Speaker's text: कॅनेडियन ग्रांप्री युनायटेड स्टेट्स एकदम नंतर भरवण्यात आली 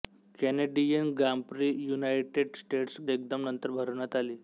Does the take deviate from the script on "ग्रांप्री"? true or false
false